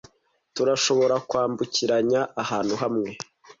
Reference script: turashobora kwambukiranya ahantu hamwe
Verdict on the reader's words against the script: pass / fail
pass